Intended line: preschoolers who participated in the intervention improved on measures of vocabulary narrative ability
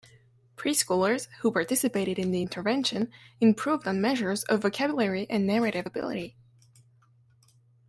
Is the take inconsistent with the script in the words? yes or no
yes